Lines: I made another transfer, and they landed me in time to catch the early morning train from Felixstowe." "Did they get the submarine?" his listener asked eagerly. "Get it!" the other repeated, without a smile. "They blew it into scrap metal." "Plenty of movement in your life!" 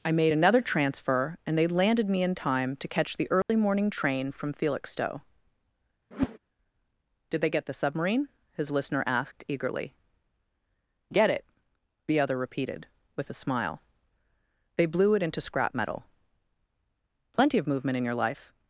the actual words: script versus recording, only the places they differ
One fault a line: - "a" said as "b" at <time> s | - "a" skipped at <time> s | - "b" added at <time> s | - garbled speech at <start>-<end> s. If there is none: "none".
- "without" said as "with" at 13.2 s